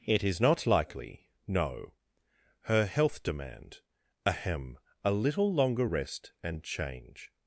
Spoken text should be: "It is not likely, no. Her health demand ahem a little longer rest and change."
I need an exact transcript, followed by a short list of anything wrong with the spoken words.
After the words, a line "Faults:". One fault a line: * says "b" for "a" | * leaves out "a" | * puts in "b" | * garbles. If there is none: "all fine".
"It is not likely, no. Her health demand ahem a little longer rest and change."
Faults:
all fine